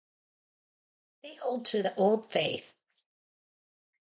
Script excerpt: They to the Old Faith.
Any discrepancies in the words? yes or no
yes